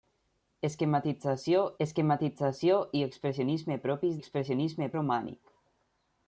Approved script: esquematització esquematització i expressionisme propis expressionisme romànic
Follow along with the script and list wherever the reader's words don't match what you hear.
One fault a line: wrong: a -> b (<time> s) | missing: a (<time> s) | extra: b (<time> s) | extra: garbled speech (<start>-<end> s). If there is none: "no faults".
no faults